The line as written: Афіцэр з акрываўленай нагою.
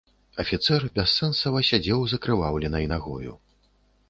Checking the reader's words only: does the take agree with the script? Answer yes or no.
no